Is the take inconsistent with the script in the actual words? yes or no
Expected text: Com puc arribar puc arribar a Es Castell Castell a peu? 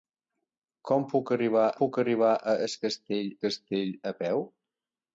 no